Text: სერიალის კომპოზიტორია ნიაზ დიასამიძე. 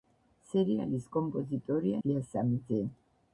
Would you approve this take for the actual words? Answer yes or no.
no